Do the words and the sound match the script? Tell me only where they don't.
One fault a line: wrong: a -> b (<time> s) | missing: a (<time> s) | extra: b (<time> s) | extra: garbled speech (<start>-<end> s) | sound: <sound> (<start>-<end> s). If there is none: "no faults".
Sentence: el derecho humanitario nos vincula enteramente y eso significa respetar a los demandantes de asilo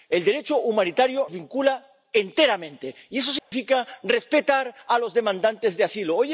missing: nos (1.3 s)
sound: dropout (3.4-3.5 s)